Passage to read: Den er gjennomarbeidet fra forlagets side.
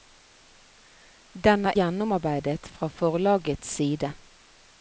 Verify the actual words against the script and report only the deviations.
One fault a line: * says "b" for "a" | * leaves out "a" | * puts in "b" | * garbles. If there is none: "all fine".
all fine